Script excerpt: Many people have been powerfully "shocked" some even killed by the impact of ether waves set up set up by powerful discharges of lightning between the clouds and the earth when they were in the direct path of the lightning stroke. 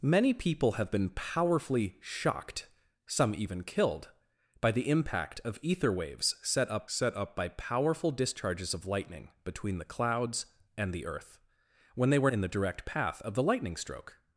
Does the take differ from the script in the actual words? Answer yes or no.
no